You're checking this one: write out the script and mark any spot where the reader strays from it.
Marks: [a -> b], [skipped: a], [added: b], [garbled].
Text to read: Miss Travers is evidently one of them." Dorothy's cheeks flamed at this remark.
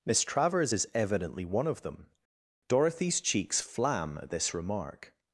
Miss Travers is evidently one of them." Dorothy's cheeks [flamed -> flam] at this remark.